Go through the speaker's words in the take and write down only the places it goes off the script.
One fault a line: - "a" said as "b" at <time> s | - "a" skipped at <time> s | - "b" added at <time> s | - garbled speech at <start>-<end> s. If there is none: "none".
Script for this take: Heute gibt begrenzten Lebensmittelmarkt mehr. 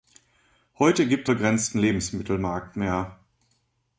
none